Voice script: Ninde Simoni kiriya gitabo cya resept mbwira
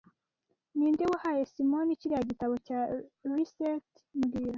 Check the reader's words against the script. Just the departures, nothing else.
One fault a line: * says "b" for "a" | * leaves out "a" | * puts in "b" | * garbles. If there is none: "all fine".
* puts in "wahaye"